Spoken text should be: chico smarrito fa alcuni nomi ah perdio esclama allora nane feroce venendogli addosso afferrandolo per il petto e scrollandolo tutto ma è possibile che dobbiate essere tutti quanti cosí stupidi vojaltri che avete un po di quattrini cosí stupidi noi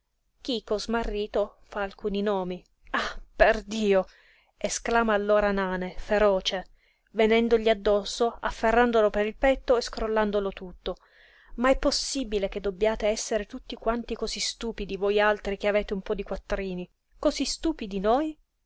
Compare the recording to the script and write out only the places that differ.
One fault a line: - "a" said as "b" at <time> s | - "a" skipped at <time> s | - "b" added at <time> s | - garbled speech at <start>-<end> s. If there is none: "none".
none